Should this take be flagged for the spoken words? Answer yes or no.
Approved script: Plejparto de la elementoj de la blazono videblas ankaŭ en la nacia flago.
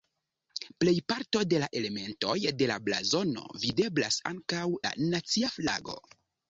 yes